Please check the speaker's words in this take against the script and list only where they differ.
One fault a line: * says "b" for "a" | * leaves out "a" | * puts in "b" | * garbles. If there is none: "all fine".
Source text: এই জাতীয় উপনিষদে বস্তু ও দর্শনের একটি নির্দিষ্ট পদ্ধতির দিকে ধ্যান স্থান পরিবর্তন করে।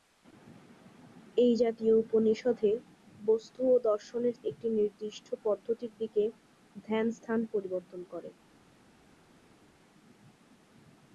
all fine